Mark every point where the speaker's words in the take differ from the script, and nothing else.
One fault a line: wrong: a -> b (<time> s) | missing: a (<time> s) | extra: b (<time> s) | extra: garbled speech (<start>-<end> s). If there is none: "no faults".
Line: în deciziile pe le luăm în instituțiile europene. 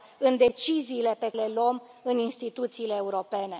no faults